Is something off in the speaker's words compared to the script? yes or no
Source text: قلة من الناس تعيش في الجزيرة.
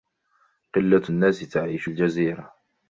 yes